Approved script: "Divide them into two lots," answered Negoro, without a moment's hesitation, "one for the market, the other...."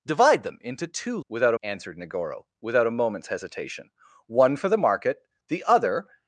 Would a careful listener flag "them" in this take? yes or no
no